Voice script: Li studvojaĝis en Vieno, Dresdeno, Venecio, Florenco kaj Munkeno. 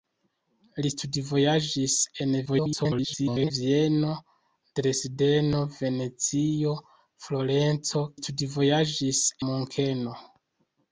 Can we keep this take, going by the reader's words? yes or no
no